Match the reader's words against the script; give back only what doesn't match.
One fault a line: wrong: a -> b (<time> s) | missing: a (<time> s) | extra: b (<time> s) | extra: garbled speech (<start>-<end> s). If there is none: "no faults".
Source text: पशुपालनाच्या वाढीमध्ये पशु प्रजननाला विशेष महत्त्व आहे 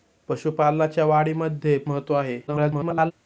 missing: पशु प्रजननाला विशेष (1.8 s)
extra: garbled speech (2.5-3.1 s)